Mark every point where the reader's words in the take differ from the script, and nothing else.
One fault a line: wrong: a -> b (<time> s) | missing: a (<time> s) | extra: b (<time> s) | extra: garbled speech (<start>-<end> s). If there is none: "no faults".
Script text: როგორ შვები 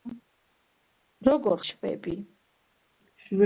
no faults